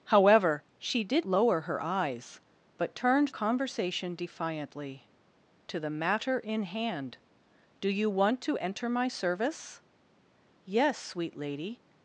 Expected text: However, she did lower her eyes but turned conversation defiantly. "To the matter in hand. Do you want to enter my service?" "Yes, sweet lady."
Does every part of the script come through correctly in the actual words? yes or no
yes